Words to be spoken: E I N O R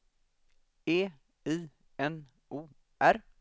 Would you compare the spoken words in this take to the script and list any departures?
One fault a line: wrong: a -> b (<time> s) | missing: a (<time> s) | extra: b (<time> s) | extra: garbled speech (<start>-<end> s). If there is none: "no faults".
no faults